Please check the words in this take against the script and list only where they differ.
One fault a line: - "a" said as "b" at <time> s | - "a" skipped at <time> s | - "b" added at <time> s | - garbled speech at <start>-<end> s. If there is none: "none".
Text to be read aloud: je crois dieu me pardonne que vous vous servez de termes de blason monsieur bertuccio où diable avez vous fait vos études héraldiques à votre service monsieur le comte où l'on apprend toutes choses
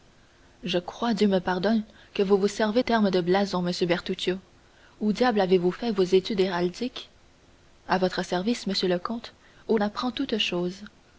- "de" skipped at 2.8 s
- "l'on" skipped at 9.8 s